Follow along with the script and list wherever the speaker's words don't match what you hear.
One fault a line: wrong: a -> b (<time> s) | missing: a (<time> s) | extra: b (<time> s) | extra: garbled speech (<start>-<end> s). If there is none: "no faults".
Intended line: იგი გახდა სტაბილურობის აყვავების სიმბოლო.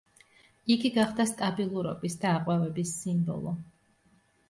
extra: და (2.2 s)